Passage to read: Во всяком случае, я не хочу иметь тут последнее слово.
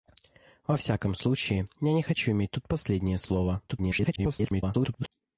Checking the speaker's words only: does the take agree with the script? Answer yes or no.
no